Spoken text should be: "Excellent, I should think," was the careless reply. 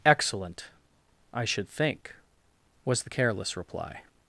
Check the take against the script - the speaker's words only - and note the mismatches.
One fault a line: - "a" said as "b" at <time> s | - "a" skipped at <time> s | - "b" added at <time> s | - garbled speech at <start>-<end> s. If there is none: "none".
none